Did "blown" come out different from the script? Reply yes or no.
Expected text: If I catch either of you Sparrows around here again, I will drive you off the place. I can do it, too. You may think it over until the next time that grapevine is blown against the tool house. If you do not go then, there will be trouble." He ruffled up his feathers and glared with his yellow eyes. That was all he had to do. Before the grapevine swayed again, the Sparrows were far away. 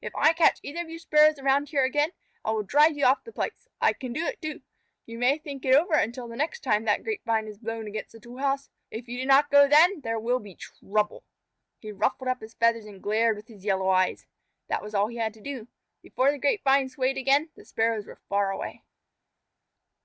no